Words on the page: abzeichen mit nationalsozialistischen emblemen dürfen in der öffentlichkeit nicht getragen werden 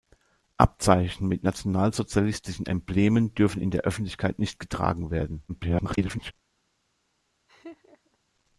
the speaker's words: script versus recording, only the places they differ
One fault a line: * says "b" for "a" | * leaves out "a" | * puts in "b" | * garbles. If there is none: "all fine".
* garbles